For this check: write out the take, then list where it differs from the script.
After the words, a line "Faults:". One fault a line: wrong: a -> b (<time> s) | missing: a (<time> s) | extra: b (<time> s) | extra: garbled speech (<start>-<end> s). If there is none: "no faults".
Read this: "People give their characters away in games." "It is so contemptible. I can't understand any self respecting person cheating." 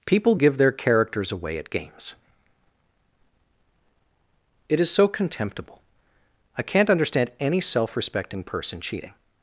"People give their characters away at games." "It is so contemptible. I can't understand any self respecting person cheating."
Faults:
wrong: in -> at (1.6 s)